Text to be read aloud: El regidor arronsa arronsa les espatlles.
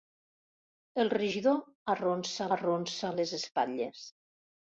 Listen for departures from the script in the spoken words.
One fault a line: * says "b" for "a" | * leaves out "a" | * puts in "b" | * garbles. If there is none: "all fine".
all fine